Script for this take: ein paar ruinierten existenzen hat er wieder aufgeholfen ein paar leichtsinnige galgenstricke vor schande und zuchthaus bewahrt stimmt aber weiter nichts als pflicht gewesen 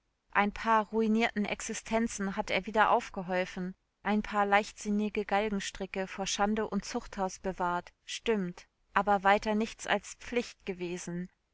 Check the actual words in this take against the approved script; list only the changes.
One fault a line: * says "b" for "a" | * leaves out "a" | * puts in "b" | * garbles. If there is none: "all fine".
all fine